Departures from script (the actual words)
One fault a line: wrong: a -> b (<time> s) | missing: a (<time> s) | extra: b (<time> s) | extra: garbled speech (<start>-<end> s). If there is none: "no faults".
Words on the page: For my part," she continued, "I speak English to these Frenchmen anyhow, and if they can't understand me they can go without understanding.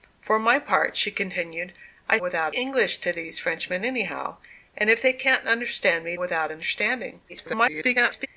wrong: speak -> without (2.2 s)
missing: they can go (6.1 s)
extra: garbled speech (7.3-8.3 s)